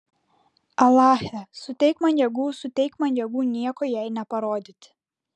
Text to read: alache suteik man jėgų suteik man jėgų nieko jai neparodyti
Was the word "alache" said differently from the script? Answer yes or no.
no